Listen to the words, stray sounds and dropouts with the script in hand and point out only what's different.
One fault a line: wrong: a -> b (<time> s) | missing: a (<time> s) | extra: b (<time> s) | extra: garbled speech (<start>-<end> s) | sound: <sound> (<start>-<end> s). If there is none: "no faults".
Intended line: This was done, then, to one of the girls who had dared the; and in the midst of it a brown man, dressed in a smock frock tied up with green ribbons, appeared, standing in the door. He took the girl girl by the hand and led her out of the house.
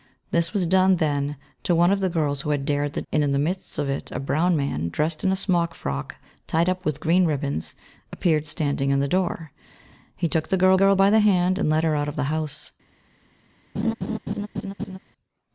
sound: laugh (13.7-15.0 s)